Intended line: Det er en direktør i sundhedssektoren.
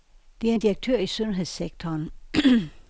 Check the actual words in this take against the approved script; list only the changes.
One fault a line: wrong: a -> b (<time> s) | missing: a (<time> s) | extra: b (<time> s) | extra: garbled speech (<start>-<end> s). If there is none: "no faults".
no faults